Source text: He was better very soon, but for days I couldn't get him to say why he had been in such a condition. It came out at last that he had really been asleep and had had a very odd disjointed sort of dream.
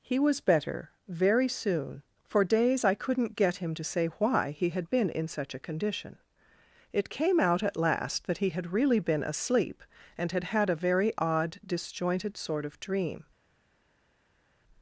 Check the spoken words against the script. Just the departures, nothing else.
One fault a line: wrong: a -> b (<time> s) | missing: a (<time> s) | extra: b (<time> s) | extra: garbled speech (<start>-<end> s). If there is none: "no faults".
missing: but (2.0 s)